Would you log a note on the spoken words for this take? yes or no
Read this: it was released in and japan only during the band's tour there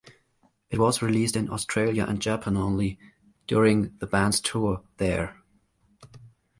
yes